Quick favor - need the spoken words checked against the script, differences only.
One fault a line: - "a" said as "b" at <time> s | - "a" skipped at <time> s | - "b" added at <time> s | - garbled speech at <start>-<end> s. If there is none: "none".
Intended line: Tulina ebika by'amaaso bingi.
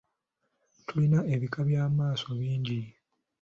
none